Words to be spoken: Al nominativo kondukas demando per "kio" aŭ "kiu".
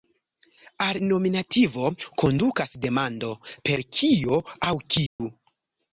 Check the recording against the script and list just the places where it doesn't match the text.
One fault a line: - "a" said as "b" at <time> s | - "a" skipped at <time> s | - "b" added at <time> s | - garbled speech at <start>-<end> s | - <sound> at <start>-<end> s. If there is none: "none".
- dropout at 5.1-5.2 s